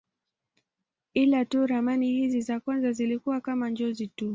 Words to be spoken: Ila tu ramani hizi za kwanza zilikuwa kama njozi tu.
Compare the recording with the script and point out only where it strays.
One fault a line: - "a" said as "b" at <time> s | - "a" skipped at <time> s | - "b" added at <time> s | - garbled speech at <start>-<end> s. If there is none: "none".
none